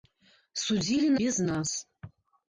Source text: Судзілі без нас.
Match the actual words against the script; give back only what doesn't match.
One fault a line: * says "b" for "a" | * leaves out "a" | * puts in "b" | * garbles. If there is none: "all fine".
all fine